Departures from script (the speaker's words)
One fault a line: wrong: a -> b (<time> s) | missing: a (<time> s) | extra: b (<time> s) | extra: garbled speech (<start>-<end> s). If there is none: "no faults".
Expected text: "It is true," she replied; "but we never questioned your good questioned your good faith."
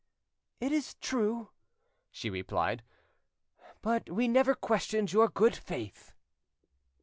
missing: questioned your good (5.5 s)